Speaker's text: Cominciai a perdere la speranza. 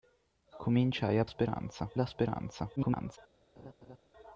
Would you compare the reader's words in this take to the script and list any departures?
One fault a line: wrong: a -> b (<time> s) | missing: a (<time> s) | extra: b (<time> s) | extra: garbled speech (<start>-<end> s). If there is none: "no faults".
wrong: perdere -> speranza (1.2 s)
extra: garbled speech (2.8-3.2 s)